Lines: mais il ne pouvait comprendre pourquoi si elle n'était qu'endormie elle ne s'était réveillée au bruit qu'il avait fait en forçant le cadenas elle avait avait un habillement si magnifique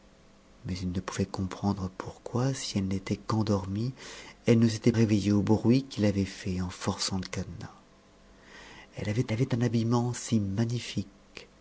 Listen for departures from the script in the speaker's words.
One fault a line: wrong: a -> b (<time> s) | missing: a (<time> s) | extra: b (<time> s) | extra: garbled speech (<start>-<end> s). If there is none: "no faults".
no faults